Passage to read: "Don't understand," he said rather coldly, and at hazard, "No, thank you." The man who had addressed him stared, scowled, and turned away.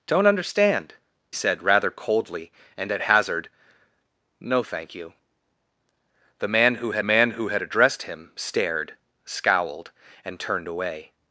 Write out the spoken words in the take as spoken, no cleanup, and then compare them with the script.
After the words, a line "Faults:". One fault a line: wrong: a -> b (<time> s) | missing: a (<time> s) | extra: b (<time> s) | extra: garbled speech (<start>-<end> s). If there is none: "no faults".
"Don't understand," said rather coldly, and at hazard, "No, thank you." The man who had man who had addressed him stared, scowled, and turned away.
Faults:
missing: he (1.0 s)
extra: man who had (7.0 s)